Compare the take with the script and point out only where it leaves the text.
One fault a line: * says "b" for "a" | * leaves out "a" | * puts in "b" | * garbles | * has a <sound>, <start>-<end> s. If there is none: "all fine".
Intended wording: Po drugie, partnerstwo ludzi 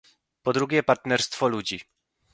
all fine